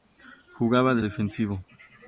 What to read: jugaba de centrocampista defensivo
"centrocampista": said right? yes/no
no